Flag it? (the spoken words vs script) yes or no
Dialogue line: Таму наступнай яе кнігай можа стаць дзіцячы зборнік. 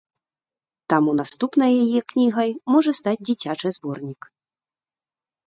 no